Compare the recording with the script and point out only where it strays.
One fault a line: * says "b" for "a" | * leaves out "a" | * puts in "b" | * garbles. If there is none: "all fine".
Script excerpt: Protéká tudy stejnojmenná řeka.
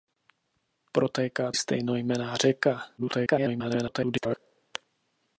* leaves out "tudy"
* garbles